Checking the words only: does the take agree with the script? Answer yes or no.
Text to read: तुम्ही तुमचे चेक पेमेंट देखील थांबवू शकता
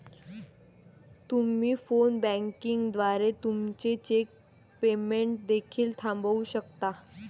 no